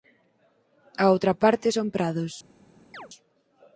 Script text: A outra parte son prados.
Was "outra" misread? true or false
false